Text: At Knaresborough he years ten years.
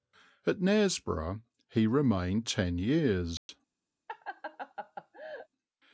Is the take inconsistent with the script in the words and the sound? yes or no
yes